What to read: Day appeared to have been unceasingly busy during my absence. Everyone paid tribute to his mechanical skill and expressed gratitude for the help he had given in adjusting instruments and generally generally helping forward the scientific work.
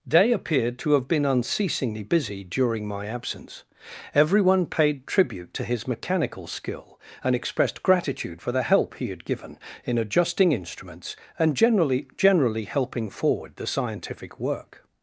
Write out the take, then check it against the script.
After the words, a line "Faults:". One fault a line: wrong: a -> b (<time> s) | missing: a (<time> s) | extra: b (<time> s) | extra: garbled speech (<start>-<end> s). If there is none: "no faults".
Day appeared to have been unceasingly busy during my absence. Everyone paid tribute to his mechanical skill and expressed gratitude for the help he had given in adjusting instruments and generally generally helping forward the scientific work.
Faults:
no faults